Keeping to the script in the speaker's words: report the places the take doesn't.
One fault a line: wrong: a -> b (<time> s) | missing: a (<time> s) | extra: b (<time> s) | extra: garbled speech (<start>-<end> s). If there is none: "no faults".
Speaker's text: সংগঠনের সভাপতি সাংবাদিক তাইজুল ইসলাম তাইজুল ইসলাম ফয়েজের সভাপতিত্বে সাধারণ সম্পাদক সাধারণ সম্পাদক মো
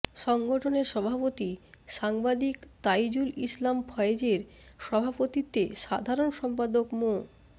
missing: তাইজুল ইসলাম (3.8 s)
missing: সাধারণ সম্পাদক (6.9 s)